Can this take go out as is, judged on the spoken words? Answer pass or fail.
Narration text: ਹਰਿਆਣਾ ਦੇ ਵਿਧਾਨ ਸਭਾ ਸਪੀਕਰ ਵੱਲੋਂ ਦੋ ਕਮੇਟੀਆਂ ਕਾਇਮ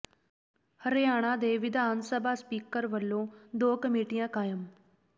pass